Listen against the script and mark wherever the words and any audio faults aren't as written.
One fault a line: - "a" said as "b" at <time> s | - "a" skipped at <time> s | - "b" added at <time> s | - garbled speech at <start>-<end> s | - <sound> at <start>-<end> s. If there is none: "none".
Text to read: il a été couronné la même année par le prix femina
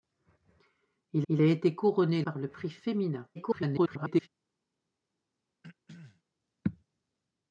- "il" added at 1.3 s
- "la même année" skipped at 2.2 s
- garbled speech at 3.3-4.3 s
- throat clearing at 5.6-6.2 s